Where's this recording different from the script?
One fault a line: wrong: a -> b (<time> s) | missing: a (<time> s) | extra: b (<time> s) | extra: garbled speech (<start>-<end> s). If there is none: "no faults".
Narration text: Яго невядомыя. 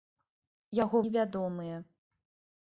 no faults